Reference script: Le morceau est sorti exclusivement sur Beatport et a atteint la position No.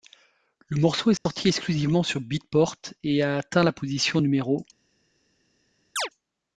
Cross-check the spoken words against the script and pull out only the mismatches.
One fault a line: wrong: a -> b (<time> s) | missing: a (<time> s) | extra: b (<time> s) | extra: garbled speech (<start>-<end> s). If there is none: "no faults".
no faults